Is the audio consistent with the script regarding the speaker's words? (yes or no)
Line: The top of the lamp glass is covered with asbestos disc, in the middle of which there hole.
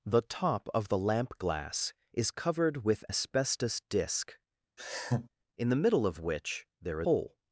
yes